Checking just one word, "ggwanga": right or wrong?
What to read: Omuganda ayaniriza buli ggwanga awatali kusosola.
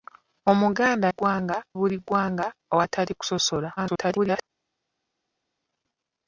right